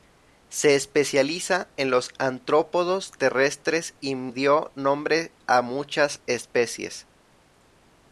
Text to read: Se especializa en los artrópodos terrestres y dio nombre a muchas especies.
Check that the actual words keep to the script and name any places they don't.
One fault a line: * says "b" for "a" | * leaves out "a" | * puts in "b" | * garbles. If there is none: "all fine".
all fine